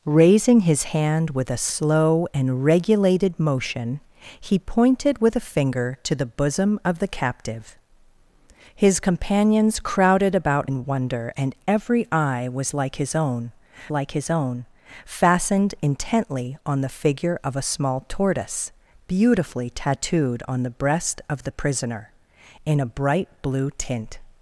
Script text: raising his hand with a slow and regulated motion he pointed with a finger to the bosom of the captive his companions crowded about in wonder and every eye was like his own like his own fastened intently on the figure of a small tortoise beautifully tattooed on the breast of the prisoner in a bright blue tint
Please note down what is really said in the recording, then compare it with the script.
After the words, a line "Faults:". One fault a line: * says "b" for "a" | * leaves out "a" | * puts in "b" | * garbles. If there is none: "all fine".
raising his hand with a slow and regulated motion he pointed with a finger to the bosom of the captive his companions crowded about in wonder and every eye was like his own like his own fastened intently on the figure of a small tortoise beautifully tattooed on the breast of the prisoner in a bright blue tint
Faults:
all fine